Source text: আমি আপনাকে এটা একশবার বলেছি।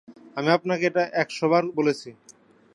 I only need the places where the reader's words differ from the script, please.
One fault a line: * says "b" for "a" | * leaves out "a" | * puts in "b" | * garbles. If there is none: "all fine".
all fine